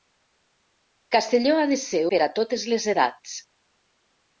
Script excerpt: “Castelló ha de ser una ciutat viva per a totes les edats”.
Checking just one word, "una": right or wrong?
wrong